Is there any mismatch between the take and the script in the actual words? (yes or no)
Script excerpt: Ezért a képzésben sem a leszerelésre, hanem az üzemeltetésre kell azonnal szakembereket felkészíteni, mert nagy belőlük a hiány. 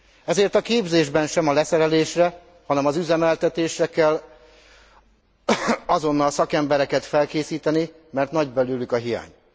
no